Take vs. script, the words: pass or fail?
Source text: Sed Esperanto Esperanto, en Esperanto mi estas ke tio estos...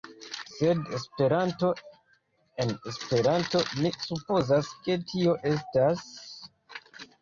fail